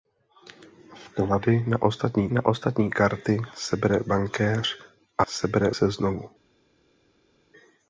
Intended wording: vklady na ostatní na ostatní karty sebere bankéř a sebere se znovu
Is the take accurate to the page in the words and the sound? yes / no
yes